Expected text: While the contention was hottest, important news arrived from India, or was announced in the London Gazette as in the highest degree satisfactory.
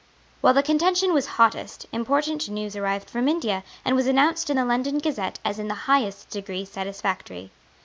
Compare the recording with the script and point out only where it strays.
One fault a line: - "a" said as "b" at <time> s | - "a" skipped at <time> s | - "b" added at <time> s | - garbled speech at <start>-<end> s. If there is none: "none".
- "or" said as "and" at 3.9 s